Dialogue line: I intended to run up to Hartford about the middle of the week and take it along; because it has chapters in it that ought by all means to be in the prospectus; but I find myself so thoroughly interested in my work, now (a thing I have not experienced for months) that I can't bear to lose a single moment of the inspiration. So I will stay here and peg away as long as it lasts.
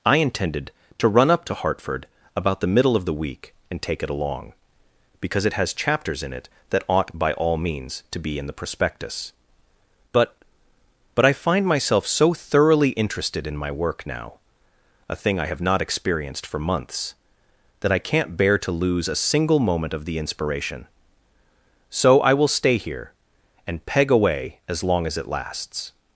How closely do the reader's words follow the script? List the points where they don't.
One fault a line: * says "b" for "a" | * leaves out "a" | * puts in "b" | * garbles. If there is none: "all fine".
* puts in "but"